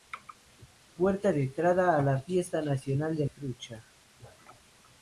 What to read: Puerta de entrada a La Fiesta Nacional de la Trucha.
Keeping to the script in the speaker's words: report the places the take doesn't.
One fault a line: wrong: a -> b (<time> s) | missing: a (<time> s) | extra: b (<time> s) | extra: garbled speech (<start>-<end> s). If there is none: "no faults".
missing: la (3.3 s)